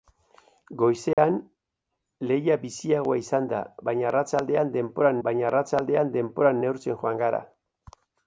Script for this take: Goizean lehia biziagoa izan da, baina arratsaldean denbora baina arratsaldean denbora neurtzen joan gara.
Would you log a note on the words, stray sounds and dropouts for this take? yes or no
yes